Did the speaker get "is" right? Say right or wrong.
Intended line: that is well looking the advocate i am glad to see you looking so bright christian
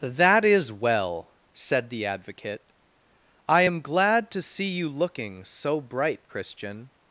right